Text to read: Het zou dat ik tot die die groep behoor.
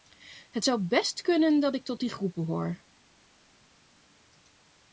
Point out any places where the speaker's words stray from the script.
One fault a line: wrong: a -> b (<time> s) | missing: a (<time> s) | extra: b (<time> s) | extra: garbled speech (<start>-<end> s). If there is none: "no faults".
extra: best kunnen (0.8 s)
missing: die (2.1 s)